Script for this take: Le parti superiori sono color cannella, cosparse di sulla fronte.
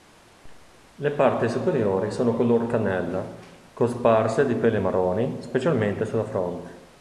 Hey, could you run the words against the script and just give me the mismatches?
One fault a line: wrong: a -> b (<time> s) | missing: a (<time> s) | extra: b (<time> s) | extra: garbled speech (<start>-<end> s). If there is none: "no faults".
extra: peli marroni specialmente (4.5 s)